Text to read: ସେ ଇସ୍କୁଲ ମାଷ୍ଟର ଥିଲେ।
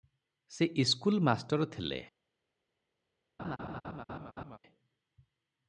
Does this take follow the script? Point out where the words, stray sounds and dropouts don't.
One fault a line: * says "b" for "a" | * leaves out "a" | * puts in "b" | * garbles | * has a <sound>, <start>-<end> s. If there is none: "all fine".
* has a laugh, 3.4-4.6 s